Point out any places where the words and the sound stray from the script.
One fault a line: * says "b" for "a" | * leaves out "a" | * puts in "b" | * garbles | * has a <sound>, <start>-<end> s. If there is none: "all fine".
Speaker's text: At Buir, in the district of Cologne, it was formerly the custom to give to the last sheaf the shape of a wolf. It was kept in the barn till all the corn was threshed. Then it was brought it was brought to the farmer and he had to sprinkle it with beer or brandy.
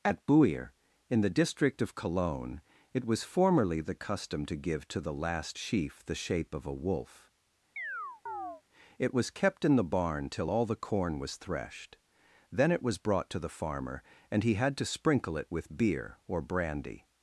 * has a chirp, 7.8-8.6 s
* leaves out "it was brought"